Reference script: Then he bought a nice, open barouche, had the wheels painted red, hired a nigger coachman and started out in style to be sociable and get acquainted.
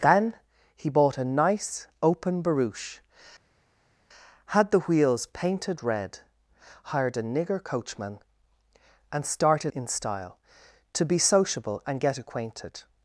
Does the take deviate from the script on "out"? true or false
true